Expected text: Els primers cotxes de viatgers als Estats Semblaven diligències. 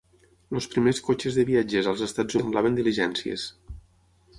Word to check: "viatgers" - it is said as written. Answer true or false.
true